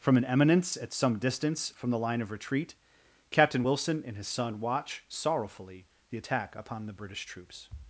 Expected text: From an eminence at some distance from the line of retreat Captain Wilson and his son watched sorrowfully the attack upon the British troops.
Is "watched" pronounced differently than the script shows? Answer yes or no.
yes